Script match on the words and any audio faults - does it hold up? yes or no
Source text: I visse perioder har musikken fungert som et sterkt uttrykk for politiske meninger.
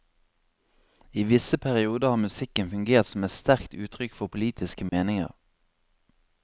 no